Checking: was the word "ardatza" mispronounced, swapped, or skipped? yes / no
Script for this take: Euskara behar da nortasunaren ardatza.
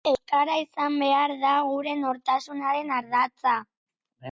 no